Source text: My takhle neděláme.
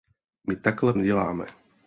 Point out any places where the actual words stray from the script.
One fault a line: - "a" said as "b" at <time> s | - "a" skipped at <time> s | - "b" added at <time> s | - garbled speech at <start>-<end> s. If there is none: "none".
none